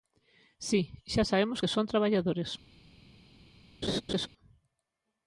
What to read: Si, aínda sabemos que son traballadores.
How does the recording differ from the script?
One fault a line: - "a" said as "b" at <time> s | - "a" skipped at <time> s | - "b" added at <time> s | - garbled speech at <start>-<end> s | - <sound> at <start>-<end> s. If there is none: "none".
- "aínda" said as "xa" at 1.1 s
- laugh at 3.8-4.3 s